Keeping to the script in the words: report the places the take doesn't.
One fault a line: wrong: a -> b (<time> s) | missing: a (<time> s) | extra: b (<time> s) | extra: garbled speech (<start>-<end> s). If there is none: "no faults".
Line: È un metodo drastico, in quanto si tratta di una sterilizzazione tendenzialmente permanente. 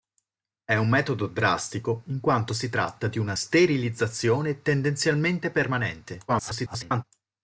extra: garbled speech (6.3-7.0 s)